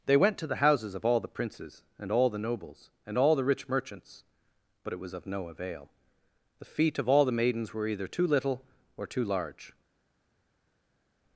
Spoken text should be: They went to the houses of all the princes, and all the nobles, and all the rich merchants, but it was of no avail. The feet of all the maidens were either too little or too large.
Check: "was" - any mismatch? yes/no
no